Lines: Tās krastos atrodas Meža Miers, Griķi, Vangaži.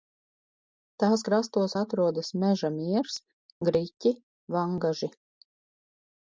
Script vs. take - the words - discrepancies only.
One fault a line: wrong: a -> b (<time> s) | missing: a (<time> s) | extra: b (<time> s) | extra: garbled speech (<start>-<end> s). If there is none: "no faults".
no faults